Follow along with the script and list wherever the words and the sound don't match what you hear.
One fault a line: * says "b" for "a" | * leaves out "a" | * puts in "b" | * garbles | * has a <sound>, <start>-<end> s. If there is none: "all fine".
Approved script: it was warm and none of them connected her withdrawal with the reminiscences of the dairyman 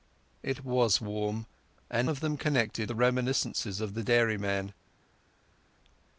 * leaves out "none"
* leaves out "her withdrawal with"